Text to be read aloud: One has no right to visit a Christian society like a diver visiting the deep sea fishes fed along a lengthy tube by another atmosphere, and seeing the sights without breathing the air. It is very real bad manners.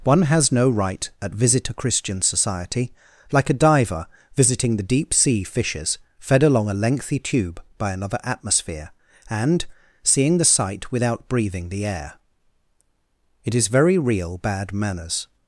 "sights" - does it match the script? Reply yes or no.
no